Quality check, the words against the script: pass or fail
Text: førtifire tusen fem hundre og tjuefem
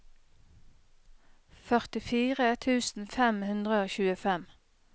pass